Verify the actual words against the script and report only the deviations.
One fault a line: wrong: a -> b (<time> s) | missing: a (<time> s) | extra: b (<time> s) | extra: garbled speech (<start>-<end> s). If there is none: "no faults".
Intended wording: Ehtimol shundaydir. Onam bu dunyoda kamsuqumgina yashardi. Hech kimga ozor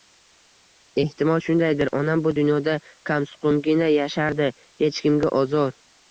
no faults